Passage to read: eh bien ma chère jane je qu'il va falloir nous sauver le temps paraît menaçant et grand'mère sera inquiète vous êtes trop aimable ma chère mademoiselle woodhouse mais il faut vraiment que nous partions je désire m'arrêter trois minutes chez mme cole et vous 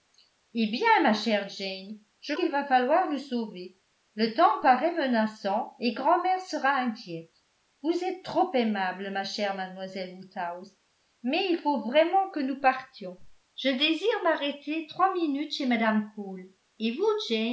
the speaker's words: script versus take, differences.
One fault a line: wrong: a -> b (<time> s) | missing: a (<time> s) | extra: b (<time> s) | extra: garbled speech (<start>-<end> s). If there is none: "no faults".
no faults